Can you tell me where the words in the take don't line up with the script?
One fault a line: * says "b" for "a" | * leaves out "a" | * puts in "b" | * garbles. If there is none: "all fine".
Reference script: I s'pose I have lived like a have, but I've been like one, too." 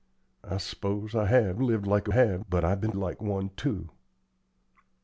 all fine